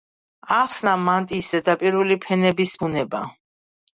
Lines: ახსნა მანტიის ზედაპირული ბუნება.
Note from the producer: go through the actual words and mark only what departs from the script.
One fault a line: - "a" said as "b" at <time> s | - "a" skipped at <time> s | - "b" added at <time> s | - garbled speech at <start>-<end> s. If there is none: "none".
- "ფენების" added at 2.3 s